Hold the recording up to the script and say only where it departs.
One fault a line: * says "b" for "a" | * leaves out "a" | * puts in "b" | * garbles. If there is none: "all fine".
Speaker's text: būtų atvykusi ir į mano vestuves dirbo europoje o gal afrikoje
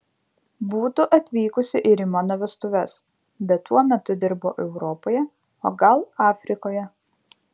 * puts in "bet tuo metu"